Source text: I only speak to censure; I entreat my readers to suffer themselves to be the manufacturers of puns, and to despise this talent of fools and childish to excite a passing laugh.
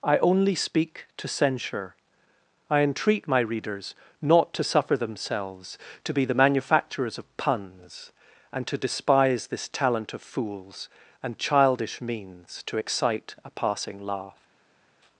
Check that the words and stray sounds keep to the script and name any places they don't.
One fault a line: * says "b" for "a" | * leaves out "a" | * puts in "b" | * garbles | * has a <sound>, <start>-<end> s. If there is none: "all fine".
* puts in "not"
* puts in "means"